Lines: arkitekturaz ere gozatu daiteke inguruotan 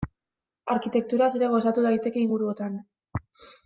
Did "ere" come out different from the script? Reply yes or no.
no